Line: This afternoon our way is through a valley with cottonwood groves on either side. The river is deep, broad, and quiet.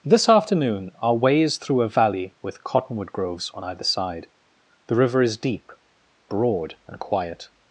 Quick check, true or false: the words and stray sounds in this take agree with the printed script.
true